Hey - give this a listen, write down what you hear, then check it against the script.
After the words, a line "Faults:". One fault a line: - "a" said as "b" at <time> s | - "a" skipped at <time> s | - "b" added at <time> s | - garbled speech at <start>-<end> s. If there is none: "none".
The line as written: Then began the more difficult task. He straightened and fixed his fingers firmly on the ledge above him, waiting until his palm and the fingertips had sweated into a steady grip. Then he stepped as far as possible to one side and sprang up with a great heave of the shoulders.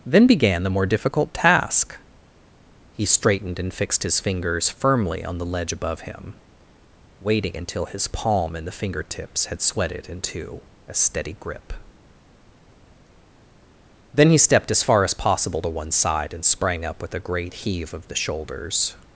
Then began the more difficult task. He straightened and fixed his fingers firmly on the ledge above him, waiting until his palm and the fingertips had sweated into a steady grip. Then he stepped as far as possible to one side and sprang up with a great heave of the shoulders.
Faults:
none